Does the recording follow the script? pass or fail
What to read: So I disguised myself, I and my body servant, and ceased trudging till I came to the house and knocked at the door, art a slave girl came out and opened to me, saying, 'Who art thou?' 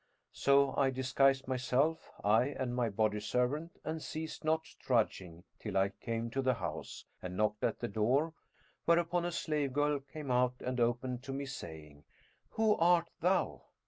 fail